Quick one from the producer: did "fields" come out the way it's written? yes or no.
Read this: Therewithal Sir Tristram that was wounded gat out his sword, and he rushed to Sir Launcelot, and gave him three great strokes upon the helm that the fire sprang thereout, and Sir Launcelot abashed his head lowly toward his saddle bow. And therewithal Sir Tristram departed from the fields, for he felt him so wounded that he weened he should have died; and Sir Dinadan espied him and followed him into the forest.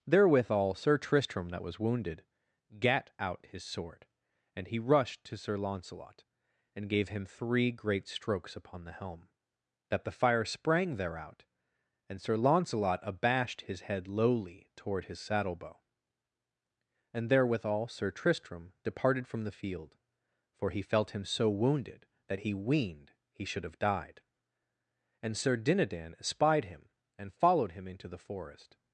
no